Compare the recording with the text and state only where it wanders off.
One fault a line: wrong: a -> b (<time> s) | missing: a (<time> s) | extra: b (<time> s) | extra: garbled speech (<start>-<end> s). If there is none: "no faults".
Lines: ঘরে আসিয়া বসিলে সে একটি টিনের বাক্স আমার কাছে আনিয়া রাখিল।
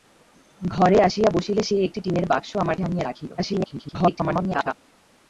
missing: কাছে (2.8 s)
extra: garbled speech (3.4-4.7 s)